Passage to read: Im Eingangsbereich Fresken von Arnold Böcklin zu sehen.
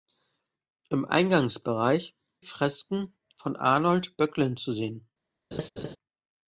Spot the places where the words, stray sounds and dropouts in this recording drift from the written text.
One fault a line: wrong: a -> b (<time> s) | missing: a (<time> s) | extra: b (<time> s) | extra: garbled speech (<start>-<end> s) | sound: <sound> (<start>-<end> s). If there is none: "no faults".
sound: laugh (5.5-6.0 s)